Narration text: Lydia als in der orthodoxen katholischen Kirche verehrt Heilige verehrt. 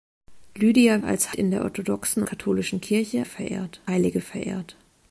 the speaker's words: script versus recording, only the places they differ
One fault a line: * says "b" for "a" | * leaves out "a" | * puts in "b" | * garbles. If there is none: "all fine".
all fine